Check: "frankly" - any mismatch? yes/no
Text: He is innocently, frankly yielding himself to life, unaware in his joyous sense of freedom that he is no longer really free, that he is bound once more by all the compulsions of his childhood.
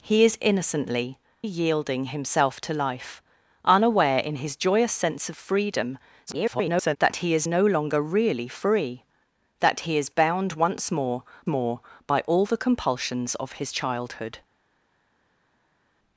yes